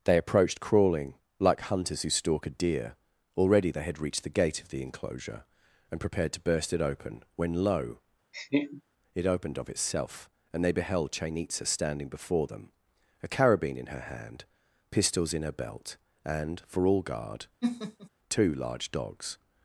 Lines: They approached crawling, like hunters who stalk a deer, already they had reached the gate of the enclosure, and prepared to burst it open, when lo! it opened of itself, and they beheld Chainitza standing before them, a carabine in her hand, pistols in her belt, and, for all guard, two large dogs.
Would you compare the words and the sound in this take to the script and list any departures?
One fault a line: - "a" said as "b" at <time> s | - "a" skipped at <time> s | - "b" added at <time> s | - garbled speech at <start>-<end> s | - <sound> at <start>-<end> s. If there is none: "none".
- laugh at 8.3-8.8 s
- laugh at 17.6-18.1 s